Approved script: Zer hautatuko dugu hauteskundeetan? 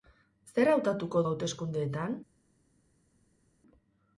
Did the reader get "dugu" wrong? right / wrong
wrong